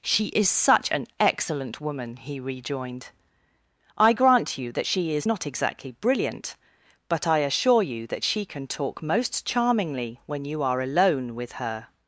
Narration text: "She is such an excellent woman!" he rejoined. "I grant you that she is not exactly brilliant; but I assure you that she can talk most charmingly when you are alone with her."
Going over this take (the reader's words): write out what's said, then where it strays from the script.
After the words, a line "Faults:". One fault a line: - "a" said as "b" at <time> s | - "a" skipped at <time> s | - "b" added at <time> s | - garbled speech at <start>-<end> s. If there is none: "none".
"She is such an excellent woman!" he rejoined. "I grant you that she is not exactly brilliant; but I assure you that she can talk most charmingly when you are alone with her."
Faults:
none